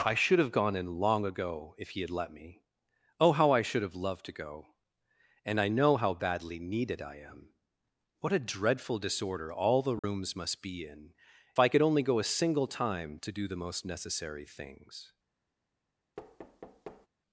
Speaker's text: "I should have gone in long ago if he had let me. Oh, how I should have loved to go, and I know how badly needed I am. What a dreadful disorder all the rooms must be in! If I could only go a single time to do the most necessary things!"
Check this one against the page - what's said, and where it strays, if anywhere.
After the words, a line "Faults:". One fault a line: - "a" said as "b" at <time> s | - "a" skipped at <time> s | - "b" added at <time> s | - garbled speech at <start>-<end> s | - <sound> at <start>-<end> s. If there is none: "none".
"I should have gone in long ago if he had let me. Oh, how I should have loved to go, and I know how badly needed I am. What a dreadful disorder all the rooms must be in! I could only go a single time to do the most necessary things!"
Faults:
- dropout at 10.0-10.0 s
- "If" skipped at 11.2 s
- thud at 16.2-17.1 s